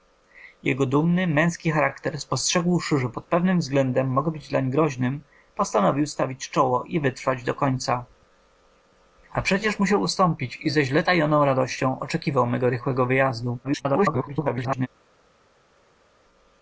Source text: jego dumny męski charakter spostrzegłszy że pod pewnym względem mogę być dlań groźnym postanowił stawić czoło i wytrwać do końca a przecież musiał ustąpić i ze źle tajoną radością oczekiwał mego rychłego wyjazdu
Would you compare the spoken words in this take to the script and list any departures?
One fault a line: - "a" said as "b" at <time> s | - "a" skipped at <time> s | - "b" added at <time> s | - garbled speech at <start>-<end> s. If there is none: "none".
- garbled speech at 13.6-14.9 s